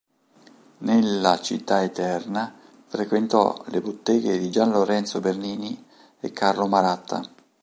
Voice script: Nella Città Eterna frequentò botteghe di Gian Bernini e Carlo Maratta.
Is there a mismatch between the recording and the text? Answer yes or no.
yes